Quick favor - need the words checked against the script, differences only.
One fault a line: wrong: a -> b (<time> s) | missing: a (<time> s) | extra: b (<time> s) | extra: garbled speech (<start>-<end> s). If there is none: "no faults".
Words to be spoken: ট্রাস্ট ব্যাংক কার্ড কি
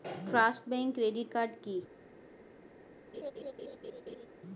extra: ক্রেডিট (1.0 s)